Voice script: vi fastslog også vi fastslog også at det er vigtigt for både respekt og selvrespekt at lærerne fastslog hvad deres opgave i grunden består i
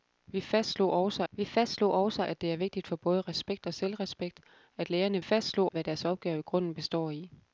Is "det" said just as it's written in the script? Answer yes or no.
yes